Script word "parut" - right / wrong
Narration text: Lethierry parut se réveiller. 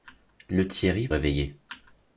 wrong